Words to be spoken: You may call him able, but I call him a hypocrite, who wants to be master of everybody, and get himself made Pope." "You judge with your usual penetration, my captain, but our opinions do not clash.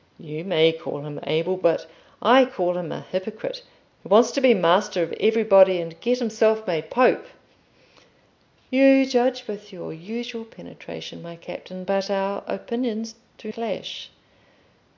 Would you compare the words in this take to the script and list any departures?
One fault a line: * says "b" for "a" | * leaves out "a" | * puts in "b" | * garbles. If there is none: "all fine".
* leaves out "not"